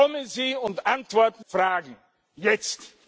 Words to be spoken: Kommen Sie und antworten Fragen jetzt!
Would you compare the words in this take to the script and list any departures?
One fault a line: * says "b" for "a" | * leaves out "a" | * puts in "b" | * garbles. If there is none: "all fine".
all fine